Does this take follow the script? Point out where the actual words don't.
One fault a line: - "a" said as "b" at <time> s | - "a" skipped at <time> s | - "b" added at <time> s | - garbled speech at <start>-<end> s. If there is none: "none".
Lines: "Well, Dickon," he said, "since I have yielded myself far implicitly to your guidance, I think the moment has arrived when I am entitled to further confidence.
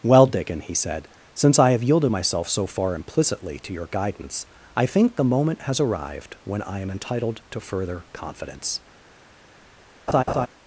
- "so" added at 2.5 s